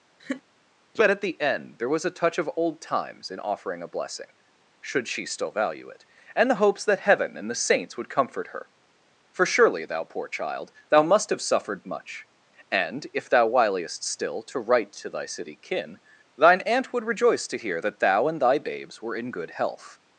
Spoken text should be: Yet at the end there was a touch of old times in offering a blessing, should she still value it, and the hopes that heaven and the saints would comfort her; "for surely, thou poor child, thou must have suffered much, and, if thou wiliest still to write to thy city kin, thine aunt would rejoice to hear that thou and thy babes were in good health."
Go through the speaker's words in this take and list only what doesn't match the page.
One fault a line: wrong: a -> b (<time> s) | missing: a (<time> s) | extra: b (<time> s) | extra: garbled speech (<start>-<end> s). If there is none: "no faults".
wrong: Yet -> But (0.9 s)